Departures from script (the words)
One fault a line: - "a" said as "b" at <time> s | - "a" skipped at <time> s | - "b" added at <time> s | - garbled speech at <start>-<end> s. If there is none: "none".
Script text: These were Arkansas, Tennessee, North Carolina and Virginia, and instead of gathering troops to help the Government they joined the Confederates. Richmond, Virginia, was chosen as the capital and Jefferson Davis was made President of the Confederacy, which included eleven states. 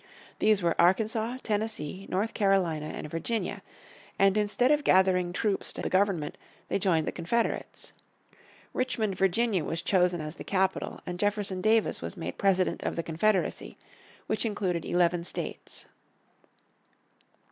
- "help" skipped at 5.8 s